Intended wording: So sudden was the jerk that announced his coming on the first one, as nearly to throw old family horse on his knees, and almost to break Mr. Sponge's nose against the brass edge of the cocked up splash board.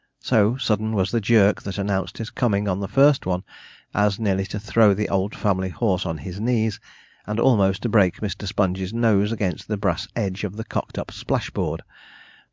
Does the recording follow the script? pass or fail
fail